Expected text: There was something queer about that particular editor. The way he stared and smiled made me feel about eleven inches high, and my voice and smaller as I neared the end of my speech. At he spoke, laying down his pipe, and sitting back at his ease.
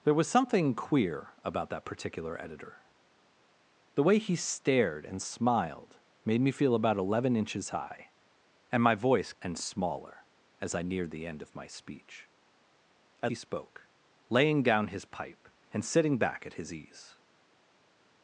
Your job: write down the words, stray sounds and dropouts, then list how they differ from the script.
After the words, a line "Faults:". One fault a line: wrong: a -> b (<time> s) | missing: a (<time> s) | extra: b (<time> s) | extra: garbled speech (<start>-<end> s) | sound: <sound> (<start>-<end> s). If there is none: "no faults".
There was something queer about that particular editor. The way he stared and smiled made me feel about eleven inches high, and my voice and smaller as I neared the end of my speech. At he spoke, laying down his pipe, and sitting back at his ease.
Faults:
no faults